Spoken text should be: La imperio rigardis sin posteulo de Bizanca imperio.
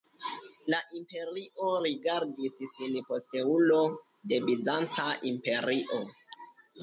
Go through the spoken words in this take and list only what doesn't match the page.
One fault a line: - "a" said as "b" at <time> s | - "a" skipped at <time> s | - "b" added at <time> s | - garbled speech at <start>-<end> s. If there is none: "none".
none